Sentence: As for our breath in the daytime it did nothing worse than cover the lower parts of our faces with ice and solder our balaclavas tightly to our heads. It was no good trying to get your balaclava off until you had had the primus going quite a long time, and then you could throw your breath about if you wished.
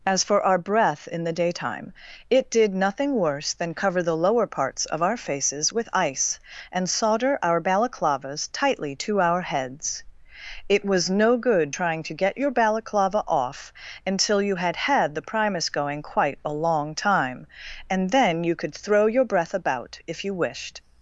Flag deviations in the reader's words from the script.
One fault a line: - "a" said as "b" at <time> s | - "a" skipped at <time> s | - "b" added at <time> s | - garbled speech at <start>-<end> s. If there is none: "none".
none